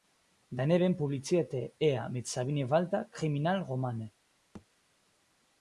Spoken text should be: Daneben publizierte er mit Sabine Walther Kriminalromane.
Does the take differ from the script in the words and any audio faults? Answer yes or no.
yes